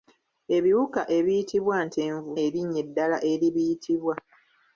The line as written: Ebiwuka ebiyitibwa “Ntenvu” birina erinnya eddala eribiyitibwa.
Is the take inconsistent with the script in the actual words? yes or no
yes